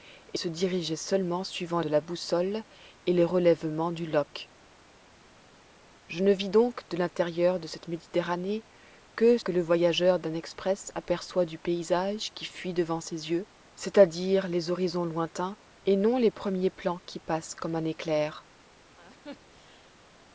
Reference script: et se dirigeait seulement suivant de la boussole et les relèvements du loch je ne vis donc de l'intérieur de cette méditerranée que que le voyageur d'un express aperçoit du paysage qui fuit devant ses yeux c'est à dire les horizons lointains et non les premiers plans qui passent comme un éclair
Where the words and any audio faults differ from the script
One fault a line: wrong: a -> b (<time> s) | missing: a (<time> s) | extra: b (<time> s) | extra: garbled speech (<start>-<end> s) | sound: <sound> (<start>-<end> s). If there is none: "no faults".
sound: laugh (19.0-20.0 s)